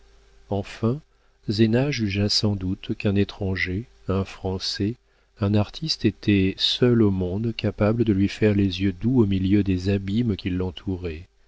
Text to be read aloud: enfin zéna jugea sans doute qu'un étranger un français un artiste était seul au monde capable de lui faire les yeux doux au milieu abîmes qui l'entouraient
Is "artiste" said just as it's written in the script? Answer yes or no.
yes